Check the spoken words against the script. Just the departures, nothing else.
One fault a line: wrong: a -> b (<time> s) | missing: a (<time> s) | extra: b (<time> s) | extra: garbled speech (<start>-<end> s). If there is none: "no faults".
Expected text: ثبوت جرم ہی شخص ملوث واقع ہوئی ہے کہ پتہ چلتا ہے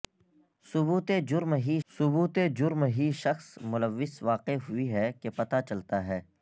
extra: ثبوت جرم ہی (1.9 s)